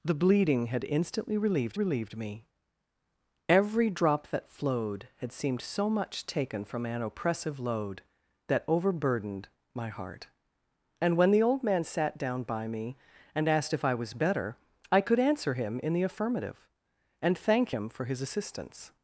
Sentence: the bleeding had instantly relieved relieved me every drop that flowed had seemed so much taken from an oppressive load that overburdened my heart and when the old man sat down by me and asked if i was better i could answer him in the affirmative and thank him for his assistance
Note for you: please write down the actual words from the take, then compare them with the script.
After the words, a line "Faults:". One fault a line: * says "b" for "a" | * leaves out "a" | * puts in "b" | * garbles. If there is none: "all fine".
the bleeding had instantly relieved relieved me every drop that flowed had seemed so much taken from an oppressive load that overburdened my heart and when the old man sat down by me and asked if i was better i could answer him in the affirmative and thank him for his assistance
Faults:
all fine